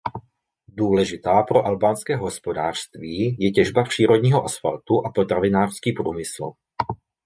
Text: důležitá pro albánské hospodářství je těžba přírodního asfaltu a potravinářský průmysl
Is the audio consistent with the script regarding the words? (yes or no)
yes